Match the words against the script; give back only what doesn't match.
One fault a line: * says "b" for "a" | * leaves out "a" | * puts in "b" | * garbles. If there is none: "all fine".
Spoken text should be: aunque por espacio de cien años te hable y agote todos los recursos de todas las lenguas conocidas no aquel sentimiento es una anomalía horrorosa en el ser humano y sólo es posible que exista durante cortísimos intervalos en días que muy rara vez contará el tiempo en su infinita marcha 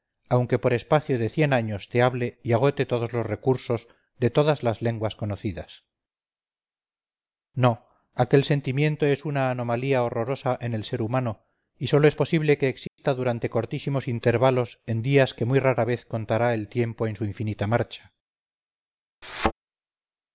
all fine